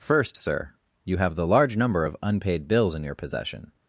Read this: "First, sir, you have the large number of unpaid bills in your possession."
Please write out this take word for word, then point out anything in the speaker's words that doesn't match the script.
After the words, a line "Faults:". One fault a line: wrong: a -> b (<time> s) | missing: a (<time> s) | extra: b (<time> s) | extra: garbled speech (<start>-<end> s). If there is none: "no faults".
"First, sir, you have the large number of unpaid bills in your possession."
Faults:
no faults